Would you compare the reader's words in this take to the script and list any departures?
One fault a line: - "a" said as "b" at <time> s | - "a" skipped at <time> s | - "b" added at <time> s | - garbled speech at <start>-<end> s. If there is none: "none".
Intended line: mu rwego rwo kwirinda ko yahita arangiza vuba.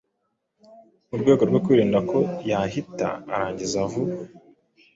none